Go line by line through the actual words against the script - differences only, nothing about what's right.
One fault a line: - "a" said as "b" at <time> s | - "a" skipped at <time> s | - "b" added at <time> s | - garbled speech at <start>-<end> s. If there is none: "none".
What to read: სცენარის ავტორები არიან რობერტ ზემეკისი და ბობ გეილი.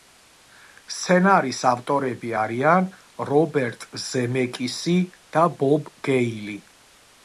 none